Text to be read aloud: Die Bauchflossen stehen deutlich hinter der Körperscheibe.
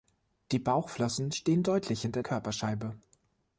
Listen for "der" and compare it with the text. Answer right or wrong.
wrong